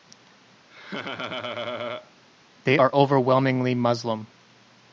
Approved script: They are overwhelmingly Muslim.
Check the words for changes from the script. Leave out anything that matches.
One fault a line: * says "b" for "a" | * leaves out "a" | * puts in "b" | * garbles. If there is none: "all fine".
all fine